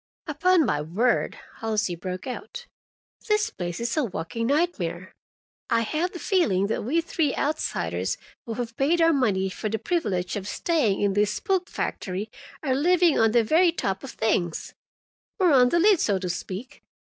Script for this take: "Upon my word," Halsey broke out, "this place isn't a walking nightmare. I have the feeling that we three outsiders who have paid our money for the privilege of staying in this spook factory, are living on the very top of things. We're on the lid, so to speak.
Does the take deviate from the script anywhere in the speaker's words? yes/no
yes